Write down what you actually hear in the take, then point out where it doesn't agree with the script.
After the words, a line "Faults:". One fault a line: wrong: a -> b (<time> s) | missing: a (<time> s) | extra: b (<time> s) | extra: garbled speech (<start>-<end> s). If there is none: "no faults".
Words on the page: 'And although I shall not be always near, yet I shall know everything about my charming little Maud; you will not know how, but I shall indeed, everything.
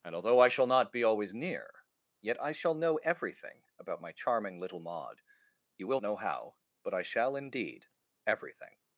'And although I shall not be always near, yet I shall know everything about my charming little Maud; you will know how, but I shall indeed, everything.
Faults:
missing: not (6.0 s)